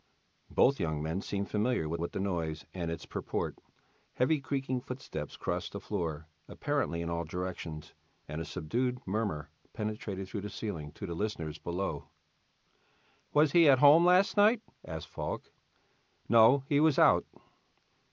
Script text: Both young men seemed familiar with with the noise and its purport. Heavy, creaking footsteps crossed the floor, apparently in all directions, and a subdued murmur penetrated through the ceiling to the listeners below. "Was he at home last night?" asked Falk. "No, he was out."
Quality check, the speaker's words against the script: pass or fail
pass